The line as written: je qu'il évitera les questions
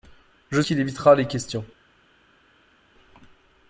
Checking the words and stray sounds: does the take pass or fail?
pass